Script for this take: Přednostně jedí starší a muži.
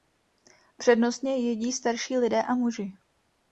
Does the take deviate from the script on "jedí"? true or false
false